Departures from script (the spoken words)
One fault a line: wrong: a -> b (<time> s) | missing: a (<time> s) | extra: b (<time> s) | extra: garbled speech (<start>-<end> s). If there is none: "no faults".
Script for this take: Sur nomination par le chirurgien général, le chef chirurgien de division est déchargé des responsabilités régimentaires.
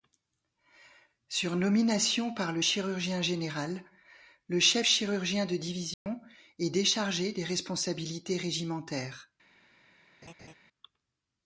no faults